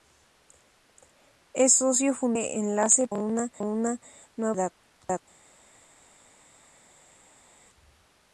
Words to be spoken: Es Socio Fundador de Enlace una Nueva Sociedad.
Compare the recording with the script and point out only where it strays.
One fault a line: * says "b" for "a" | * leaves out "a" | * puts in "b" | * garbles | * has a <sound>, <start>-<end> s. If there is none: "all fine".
all fine